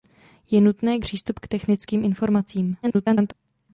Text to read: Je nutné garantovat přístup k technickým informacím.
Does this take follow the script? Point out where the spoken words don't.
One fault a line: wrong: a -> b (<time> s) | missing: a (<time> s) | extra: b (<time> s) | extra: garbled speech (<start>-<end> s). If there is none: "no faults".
missing: garantovat (1.0 s)
extra: garbled speech (2.8-3.3 s)